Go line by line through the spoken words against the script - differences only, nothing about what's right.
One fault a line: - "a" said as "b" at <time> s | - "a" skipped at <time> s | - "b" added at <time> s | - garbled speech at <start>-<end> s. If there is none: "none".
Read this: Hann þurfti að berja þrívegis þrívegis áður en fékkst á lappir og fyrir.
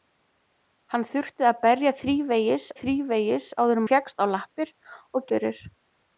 none